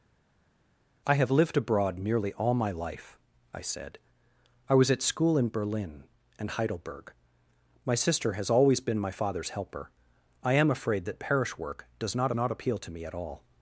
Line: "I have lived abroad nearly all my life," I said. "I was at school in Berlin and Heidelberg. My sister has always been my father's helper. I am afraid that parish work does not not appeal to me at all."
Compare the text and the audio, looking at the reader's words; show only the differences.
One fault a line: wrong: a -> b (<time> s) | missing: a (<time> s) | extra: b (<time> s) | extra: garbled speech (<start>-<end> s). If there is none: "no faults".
no faults